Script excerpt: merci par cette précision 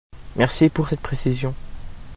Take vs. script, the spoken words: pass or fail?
fail